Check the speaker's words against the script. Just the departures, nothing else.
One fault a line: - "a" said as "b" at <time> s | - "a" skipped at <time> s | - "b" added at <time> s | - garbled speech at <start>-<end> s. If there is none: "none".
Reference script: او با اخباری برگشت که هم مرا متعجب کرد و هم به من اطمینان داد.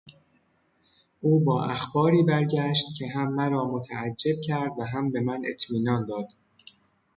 none